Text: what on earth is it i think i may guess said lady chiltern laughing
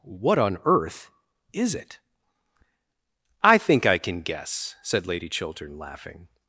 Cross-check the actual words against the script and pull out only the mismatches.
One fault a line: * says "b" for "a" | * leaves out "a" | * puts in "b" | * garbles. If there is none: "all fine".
* says "can" for "may"